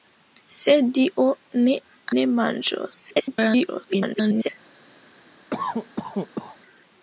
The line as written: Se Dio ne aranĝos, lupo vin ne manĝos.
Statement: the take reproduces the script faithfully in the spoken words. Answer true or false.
false